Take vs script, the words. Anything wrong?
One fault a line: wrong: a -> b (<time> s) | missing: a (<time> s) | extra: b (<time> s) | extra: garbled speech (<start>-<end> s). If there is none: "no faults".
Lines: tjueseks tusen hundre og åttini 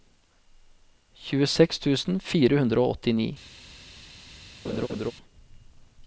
extra: fire (2.3 s)